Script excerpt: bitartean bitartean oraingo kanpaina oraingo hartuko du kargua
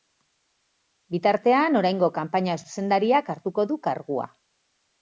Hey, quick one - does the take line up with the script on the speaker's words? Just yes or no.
no